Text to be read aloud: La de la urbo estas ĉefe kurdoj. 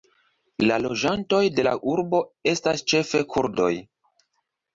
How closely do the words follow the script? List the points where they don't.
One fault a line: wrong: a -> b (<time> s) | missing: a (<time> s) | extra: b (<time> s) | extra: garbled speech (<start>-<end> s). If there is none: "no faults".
extra: loĝantoj (0.8 s)